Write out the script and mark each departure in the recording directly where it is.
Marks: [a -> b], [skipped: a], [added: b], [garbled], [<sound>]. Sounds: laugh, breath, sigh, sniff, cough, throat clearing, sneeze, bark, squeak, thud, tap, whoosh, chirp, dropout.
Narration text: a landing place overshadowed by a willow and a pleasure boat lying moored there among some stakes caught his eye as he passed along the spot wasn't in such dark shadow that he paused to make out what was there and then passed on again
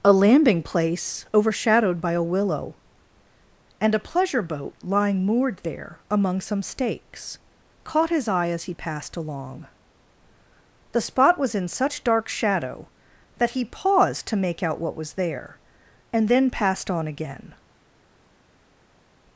a landing place overshadowed by a willow and a pleasure boat lying moored there among some stakes caught his eye as he passed along the spot [wasn't -> was] in such dark shadow that he paused to make out what was there and then passed on again